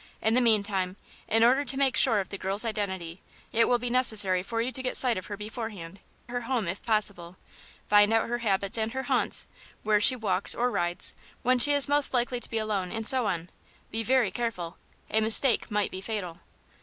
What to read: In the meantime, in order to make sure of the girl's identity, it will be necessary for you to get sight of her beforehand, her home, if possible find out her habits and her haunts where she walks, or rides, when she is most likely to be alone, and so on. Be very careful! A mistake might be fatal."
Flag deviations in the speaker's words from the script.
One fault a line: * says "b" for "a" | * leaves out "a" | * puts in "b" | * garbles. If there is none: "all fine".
all fine